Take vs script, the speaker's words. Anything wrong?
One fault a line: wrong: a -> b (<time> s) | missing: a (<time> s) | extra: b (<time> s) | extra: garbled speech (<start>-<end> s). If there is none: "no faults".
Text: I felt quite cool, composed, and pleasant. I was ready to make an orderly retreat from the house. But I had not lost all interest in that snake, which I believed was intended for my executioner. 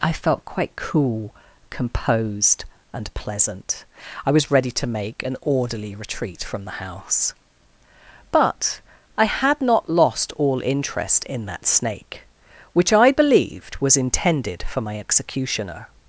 no faults